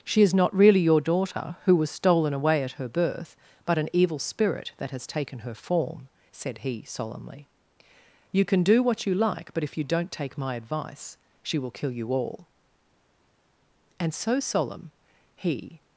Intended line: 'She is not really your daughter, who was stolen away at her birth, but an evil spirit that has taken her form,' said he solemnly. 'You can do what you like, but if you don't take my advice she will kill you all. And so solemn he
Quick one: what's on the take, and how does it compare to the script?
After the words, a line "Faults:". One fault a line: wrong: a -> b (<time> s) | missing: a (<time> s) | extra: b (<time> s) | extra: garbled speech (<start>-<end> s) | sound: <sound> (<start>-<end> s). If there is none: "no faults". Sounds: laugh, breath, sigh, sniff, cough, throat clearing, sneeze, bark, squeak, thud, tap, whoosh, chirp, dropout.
'She is not really your daughter, who was stolen away at her birth, but an evil spirit that has taken her form,' said he solemnly. 'You can do what you like, but if you don't take my advice she will kill you all. And so solemn he
Faults:
no faults